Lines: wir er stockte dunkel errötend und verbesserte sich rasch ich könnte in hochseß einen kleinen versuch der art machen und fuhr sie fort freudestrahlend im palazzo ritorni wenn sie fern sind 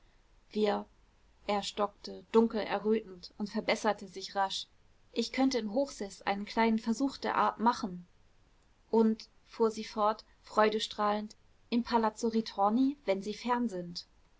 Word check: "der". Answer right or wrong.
right